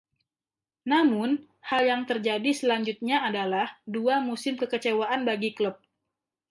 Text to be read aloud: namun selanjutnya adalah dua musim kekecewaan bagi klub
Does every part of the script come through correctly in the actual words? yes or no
no